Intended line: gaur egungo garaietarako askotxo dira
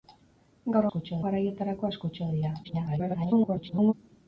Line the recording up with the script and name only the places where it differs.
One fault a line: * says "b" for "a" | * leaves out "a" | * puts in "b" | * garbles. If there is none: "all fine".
* says "askotxo" for "egungo"
* garbles